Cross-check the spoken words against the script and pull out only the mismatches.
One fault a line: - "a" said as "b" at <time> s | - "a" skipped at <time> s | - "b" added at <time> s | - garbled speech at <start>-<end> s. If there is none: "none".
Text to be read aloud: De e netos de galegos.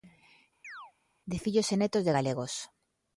- "fillos" added at 1.4 s